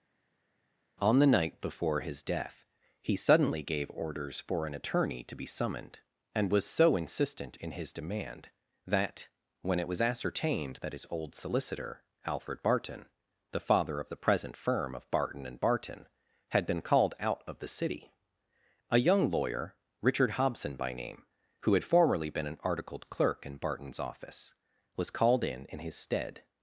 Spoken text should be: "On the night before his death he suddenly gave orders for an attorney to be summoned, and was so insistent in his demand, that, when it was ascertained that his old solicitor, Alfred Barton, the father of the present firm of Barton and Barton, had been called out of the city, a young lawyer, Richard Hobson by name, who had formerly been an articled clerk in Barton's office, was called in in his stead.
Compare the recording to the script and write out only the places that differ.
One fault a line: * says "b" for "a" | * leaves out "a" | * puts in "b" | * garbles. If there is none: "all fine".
all fine